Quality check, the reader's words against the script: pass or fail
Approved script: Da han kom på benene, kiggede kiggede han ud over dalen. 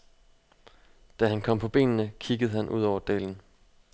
fail